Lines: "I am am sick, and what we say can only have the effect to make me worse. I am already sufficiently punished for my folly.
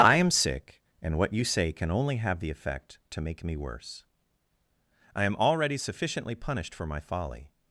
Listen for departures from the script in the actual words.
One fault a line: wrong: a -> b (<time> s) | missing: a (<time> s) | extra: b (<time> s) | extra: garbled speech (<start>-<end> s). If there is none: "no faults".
missing: am (0.3 s)
wrong: we -> you (1.3 s)